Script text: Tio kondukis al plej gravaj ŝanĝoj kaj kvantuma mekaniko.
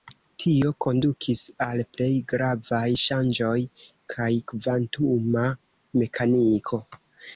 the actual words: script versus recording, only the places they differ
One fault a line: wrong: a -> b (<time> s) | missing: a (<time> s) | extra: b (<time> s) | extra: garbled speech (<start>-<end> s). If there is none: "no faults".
no faults